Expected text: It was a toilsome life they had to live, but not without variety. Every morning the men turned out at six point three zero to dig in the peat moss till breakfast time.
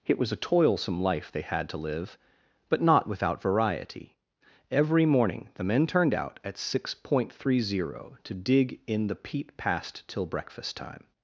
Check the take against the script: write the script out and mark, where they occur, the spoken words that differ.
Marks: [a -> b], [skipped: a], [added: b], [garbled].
It was a toilsome life they had to live, but not without variety. Every morning the men turned out at six point three zero to dig in the peat [moss -> past] till breakfast time.